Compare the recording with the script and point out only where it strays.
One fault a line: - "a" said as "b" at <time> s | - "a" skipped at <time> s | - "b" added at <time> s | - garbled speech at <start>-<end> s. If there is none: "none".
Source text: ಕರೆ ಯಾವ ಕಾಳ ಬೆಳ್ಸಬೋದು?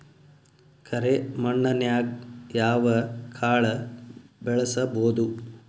- "ಮಣ್ಣನ್ಯಾಗ್" added at 1.4 s